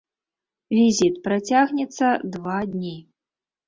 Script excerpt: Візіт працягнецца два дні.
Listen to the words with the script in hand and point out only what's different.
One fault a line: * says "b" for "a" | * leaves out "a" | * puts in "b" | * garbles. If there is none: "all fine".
all fine